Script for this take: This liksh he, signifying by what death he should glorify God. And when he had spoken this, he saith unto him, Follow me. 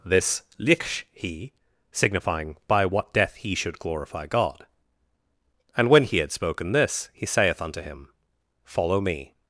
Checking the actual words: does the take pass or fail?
pass